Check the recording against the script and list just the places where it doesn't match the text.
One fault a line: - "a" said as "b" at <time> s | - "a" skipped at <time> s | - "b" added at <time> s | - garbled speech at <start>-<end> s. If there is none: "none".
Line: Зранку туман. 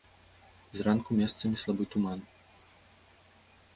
- "месцамі слабы" added at 1.2 s